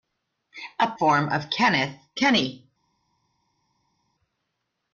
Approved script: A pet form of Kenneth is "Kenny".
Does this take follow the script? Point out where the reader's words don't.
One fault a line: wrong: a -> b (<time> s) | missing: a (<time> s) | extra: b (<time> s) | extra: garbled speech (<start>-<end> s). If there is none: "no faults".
missing: pet (0.9 s)
missing: is (2.0 s)